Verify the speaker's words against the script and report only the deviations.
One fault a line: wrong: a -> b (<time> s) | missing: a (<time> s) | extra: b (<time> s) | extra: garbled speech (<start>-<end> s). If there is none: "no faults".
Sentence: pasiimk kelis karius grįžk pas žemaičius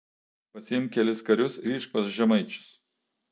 no faults